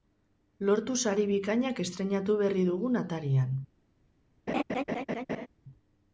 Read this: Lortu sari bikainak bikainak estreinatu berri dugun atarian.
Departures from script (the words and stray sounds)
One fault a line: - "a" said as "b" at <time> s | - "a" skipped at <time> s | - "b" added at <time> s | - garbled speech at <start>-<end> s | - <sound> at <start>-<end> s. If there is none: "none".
- "bikainak" skipped at 1.8 s
- laugh at 4.5-5.5 s